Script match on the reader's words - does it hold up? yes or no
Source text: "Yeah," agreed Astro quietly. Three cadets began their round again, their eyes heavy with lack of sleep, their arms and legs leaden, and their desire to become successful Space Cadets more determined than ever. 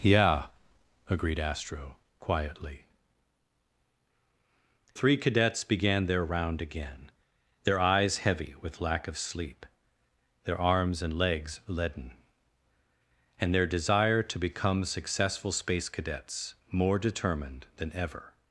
yes